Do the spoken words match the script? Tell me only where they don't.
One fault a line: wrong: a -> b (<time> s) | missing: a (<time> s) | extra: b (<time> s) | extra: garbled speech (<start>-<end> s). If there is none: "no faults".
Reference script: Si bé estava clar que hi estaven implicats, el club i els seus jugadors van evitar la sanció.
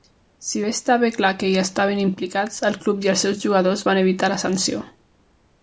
no faults